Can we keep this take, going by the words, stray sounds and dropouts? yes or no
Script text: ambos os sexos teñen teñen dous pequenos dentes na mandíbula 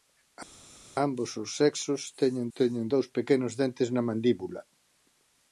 yes